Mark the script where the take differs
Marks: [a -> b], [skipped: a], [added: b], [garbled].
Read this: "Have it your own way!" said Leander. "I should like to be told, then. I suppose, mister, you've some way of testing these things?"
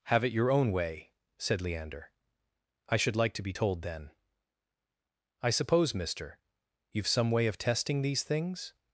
"Have it your own way!" said Leander. "I should like to be told, then. I suppose, mister, you've some way of testing these things?"